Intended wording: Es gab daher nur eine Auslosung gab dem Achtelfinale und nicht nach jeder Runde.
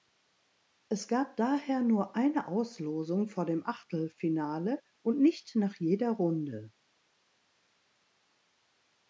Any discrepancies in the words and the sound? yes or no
yes